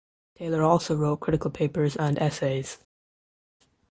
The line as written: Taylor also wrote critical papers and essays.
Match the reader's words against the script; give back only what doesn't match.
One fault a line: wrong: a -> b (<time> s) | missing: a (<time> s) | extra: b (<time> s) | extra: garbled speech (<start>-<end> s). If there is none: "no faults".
no faults